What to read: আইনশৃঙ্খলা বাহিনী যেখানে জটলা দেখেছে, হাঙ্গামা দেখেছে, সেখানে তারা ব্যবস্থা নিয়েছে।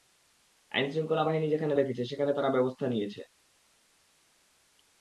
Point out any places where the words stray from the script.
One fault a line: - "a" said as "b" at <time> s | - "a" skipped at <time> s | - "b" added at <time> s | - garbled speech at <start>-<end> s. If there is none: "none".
- "জটলা দেখেছে হাঙ্গামা" skipped at 1.7 s